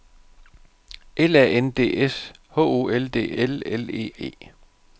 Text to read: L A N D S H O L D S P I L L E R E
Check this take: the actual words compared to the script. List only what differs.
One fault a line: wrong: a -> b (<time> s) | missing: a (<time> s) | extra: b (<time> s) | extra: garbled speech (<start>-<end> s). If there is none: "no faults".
missing: S P I (3.4 s)
missing: R (4.1 s)